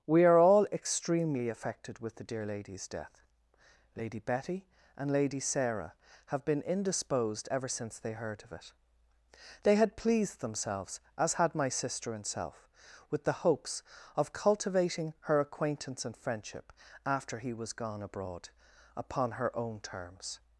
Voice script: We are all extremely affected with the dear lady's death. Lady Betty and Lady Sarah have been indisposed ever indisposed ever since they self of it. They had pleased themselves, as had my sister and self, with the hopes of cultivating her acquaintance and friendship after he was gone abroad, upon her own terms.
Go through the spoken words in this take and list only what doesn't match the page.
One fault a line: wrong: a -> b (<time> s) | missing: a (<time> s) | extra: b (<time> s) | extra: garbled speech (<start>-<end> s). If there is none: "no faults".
missing: indisposed ever (7.7 s)
wrong: self -> heard (8.1 s)